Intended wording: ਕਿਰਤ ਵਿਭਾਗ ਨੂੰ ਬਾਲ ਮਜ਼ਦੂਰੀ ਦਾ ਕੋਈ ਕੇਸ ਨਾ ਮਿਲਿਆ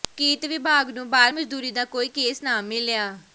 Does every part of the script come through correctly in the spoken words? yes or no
yes